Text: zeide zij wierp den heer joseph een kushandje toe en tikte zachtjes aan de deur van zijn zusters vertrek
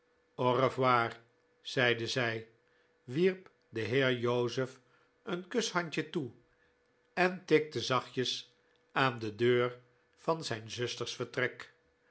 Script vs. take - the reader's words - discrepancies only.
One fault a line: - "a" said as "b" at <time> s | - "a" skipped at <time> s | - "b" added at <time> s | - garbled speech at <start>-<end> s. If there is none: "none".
none